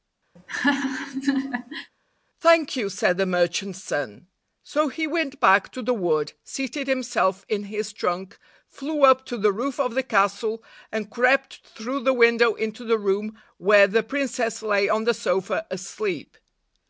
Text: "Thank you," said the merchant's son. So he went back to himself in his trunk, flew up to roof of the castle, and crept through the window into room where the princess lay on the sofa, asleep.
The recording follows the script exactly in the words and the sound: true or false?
false